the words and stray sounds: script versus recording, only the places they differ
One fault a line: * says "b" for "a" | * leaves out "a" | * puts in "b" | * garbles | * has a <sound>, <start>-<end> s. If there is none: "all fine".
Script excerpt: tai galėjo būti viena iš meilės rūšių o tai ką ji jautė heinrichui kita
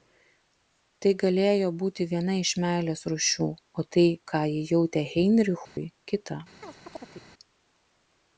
* has a dropout, 5.6-5.8 s
* has a chirp, 6.6-7.3 s